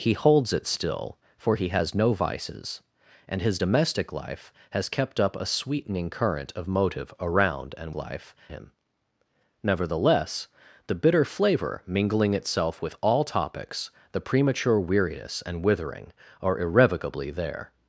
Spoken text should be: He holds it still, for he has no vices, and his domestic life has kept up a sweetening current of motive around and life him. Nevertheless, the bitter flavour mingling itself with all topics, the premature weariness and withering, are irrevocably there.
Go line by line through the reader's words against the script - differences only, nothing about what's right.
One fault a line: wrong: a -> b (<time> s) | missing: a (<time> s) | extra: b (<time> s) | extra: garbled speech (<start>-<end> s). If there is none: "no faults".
no faults